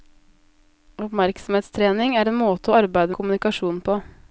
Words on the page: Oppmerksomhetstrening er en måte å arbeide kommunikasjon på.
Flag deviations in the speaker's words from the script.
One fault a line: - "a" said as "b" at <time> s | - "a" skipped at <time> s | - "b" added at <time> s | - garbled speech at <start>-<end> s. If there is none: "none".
none